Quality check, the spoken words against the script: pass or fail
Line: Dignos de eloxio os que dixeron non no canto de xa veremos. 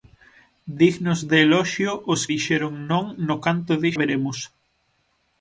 fail